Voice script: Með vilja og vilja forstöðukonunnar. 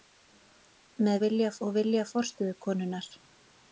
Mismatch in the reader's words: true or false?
false